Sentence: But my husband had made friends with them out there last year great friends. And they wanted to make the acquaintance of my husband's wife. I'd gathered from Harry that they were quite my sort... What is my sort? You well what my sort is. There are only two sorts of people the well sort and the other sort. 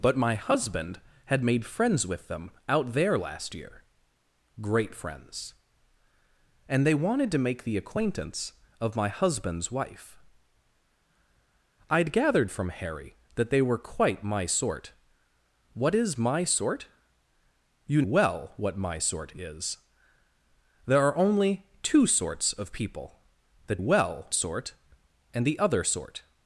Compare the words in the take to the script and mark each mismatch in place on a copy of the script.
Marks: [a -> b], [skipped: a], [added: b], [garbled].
But my husband had made friends with them out there last year great friends. And they wanted to make the acquaintance of my husband's wife. I'd gathered from Harry that they were quite my sort... What is my sort? You well what my sort is. There are only two sorts of people the well sort and the other sort.